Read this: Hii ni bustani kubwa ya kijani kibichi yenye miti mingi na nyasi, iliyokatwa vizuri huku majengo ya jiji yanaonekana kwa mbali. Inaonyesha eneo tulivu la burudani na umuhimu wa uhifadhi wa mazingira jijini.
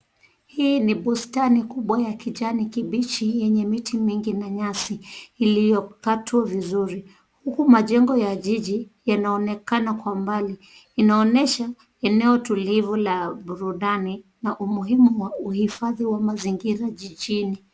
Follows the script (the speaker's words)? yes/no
yes